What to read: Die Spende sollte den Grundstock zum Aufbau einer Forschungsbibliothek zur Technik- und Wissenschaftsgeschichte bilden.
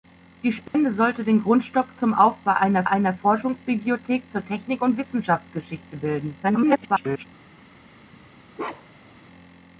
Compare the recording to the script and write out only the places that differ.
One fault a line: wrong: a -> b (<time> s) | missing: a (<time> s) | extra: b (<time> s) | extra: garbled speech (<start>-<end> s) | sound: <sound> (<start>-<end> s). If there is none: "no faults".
sound: dropout (0.7-0.7 s)
extra: einer (2.8 s)
extra: garbled speech (6.4-7.3 s)
sound: bark (8.6-9.2 s)